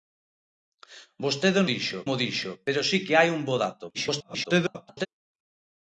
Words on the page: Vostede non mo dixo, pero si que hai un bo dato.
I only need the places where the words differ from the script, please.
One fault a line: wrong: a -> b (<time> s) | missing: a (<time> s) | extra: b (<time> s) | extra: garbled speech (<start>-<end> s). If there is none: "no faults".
wrong: non -> dixo (1.7 s)
extra: garbled speech (3.9-5.1 s)